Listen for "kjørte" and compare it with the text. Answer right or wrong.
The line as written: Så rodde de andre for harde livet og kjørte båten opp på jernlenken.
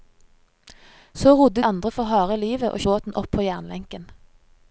wrong